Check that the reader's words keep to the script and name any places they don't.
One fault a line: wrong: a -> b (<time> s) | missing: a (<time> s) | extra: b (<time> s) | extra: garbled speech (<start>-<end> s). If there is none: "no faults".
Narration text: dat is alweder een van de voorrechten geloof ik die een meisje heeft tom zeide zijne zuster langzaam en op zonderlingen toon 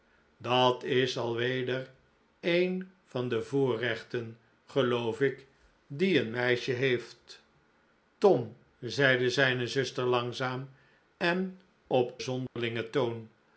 no faults